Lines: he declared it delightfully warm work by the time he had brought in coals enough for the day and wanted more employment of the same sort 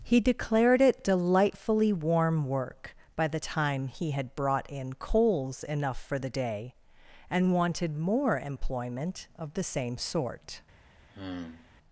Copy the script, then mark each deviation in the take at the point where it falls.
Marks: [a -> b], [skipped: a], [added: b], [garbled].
he declared it delightfully warm work by the time he had brought in coals enough for the day and wanted more employment of the same sort